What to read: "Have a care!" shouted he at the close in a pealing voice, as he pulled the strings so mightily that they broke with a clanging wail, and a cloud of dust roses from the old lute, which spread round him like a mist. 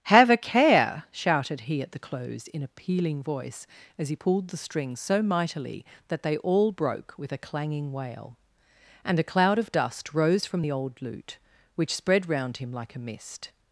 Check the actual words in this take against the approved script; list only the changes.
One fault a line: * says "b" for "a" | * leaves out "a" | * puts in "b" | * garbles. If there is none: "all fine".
* puts in "all"
* says "rose" for "roses"